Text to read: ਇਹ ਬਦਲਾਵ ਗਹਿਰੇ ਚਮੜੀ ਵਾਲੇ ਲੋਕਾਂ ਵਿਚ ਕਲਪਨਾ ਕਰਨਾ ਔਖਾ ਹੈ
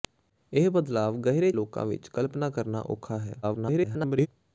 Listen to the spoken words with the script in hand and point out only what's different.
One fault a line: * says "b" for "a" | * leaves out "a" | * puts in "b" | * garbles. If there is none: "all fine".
* leaves out "ਚਮੜੀ ਵਾਲੇ"
* garbles